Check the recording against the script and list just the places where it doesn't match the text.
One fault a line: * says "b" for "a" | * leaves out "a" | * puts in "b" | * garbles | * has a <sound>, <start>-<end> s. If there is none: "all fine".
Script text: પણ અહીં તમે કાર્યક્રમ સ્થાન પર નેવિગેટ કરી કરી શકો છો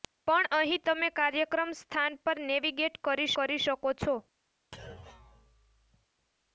* has a thud, 4.7-6.1 s